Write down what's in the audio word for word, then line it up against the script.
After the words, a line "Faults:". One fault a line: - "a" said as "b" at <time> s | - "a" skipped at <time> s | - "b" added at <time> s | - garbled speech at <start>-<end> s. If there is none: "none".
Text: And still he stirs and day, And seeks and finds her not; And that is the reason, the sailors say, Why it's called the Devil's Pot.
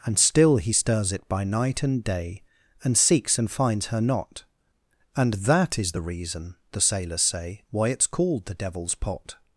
And still he stirs it by night and day, And seeks and finds her not; And that is the reason, the sailors say, Why it's called the Devil's Pot.
Faults:
- "it by night" added at 1.1 s